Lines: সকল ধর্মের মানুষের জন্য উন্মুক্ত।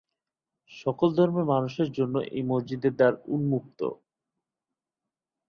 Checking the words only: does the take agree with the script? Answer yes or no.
no